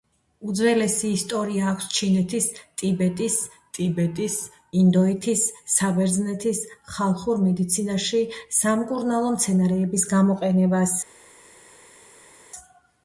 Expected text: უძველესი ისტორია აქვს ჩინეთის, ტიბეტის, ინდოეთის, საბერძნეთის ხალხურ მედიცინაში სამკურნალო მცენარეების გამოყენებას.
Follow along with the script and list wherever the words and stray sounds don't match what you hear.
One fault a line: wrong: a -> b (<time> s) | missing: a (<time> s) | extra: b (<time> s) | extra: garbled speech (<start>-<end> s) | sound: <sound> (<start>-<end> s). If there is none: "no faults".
extra: ტიბეტის (3.8 s)